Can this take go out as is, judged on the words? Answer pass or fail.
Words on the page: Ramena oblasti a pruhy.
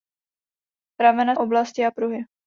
pass